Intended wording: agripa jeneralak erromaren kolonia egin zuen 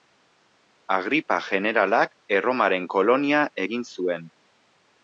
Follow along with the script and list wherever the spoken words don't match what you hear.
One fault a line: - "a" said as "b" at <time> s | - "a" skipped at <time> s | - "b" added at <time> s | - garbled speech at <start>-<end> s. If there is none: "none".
none